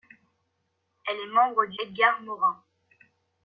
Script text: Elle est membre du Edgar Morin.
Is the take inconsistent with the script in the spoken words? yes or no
no